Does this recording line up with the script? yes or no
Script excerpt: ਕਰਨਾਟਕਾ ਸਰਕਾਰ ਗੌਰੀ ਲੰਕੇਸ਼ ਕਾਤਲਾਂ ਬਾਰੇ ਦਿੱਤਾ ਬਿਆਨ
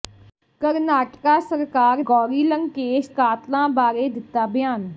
yes